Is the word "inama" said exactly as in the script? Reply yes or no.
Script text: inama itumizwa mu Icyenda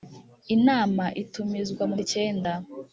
yes